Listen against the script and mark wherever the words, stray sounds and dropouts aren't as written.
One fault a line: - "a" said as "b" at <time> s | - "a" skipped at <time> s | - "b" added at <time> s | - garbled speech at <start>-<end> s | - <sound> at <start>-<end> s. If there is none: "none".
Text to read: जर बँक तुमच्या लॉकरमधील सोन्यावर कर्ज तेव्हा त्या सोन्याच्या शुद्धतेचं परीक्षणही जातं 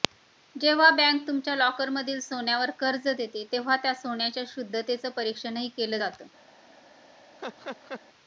- "जर" said as "जेव्हा" at 0.6 s
- "देते" added at 3.1 s
- "केलं" added at 5.7 s
- laugh at 7.4-8.0 s